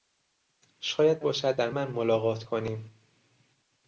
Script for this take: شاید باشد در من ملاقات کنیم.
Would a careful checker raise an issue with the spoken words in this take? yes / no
no